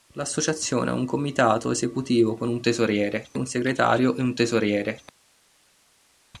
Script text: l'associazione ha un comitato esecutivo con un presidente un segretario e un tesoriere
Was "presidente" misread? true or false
true